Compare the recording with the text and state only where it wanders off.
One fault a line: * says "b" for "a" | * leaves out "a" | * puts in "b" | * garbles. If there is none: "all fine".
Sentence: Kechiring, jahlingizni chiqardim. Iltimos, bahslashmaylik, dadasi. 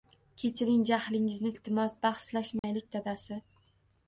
* leaves out "chiqardim"